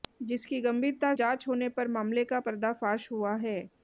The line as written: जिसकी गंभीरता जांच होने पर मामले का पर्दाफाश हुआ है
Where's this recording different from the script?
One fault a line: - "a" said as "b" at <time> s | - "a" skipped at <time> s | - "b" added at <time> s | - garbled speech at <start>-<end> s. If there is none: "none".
none